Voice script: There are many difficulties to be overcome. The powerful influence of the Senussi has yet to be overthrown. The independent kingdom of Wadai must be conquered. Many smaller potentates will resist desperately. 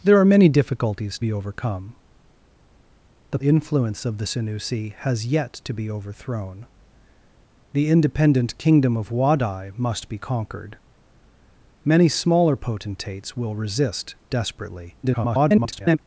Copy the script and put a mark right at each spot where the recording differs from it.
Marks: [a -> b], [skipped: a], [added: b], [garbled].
There are many difficulties [skipped: to] be overcome. The [skipped: powerful] influence of the Senussi has yet to be overthrown. The independent kingdom of Wadai must be conquered. Many smaller potentates will resist desperately. [garbled]